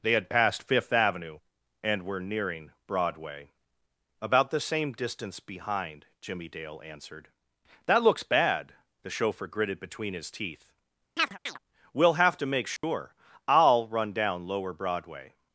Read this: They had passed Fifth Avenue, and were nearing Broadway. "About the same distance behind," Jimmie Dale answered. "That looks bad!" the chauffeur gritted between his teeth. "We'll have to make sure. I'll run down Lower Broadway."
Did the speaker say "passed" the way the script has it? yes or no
yes